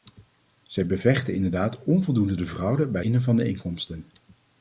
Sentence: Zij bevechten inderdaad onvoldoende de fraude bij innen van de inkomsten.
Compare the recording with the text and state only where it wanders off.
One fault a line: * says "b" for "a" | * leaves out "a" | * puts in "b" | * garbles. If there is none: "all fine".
all fine